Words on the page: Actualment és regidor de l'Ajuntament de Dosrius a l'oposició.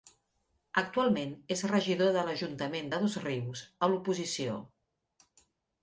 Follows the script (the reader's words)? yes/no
yes